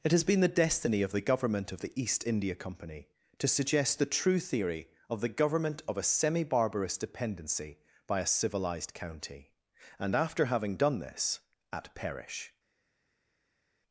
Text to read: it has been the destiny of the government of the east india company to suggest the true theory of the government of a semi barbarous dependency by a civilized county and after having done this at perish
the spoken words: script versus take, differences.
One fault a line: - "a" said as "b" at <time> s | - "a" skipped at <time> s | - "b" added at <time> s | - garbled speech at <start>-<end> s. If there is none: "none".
none